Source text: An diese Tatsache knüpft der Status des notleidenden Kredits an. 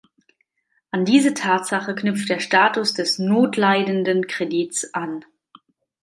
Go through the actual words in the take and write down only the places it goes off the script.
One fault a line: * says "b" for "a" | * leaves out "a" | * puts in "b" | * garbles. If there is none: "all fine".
all fine